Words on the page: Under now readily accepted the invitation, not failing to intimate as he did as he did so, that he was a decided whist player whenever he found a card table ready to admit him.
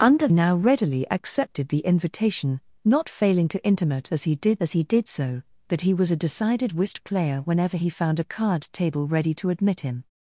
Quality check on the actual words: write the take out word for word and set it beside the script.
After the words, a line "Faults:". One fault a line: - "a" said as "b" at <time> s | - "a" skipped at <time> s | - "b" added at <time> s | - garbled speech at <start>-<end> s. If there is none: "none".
Under now readily accepted the invitation, not failing to intimate as he did as he did so, that he was a decided whist player whenever he found a card table ready to admit him.
Faults:
none